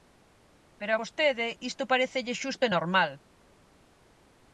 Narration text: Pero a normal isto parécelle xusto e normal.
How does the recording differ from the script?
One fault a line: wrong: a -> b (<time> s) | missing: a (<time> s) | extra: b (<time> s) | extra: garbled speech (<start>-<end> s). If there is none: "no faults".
wrong: normal -> vostede (1.0 s)